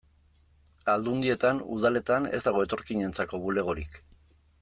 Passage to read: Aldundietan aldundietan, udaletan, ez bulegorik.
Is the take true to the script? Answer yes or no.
no